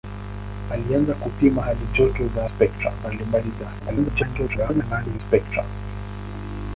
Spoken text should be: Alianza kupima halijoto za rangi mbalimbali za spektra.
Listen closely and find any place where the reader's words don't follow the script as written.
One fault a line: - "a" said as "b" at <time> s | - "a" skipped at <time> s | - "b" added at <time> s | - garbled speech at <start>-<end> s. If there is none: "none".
- "rangi" said as "spektra" at 2.6 s
- garbled speech at 3.8-5.2 s